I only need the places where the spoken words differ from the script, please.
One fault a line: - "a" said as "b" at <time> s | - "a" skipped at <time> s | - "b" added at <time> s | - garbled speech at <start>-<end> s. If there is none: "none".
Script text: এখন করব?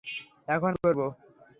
none